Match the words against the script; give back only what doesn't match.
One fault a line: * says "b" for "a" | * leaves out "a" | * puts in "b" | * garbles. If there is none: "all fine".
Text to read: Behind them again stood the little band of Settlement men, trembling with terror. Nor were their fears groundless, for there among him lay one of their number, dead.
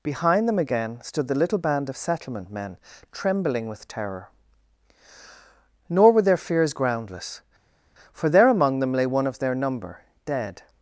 * says "them" for "him"